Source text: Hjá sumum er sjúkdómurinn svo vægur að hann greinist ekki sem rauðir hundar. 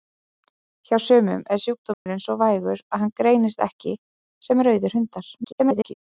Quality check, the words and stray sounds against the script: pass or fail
fail